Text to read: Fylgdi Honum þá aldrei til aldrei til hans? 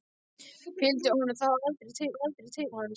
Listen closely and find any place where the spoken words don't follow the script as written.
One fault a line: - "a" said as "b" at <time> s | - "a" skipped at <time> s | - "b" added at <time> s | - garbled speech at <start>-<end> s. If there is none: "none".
none